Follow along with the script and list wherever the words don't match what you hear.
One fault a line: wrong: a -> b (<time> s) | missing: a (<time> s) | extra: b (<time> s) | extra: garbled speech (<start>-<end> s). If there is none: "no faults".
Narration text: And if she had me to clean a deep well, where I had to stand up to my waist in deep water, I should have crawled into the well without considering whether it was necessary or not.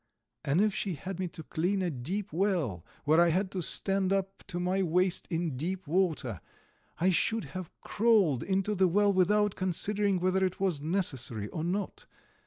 no faults